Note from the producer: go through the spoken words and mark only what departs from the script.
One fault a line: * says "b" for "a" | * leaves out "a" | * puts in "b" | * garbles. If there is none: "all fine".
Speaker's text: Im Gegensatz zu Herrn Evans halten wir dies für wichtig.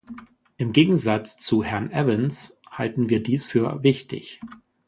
all fine